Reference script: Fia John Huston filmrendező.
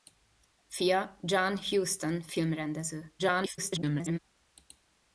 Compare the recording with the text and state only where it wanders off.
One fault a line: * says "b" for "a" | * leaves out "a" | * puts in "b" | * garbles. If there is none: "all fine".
* garbles